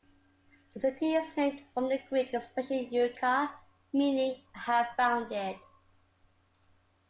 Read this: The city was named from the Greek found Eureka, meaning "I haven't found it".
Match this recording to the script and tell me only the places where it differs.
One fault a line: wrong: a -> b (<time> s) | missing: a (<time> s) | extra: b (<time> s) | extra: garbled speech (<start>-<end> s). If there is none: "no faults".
wrong: was -> is (1.1 s)
wrong: found -> expression (2.3 s)
wrong: haven't -> have (4.6 s)